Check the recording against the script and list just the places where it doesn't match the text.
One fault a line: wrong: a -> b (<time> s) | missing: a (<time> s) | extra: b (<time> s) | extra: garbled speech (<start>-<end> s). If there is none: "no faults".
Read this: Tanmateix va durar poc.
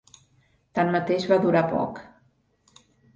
no faults